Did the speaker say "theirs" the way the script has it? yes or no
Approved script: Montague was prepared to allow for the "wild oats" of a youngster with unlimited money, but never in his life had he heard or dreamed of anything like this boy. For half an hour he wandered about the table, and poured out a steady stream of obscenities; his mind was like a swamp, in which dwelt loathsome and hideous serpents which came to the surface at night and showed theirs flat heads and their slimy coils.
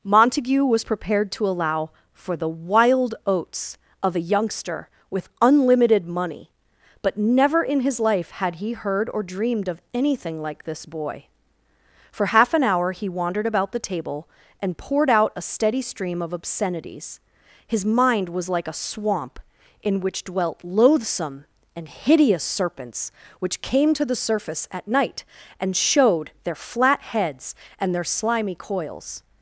no